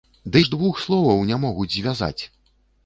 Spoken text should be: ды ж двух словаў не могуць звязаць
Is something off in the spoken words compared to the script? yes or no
no